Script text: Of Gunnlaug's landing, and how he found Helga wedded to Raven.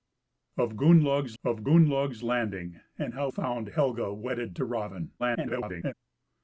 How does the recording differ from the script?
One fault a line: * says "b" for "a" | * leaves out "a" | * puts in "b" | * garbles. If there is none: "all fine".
* puts in "of Gunnlaug's"
* leaves out "he"
* garbles